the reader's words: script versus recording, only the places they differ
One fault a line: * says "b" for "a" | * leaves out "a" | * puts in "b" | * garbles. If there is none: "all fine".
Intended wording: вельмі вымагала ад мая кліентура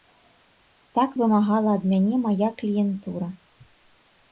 * says "так" for "вельмі"
* puts in "мяне"